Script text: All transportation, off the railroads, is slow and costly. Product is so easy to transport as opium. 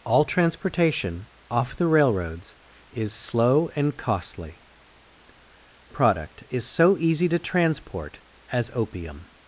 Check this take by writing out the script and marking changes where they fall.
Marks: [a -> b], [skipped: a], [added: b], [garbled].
All transportation, off the railroads, is slow and costly. Product is so easy to transport as opium.